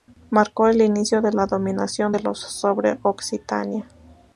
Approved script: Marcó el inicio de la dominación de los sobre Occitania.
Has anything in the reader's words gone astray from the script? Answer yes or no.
no